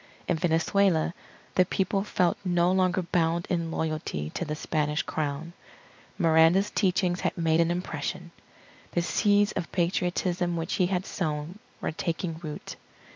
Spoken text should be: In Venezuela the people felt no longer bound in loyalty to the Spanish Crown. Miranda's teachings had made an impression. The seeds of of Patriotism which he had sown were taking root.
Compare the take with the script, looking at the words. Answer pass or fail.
fail